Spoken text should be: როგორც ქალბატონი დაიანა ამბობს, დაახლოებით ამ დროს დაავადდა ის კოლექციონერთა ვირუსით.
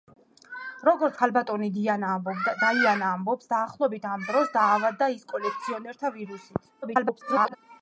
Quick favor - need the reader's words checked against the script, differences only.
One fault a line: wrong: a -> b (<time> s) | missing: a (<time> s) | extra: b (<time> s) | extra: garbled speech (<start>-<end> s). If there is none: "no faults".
extra: garbled speech (6.8-7.6 s)